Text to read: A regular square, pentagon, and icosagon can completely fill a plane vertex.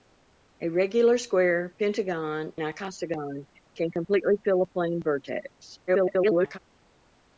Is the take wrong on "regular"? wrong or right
right